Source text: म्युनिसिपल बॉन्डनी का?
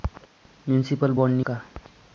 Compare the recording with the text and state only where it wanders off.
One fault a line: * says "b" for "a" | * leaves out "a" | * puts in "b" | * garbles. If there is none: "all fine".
all fine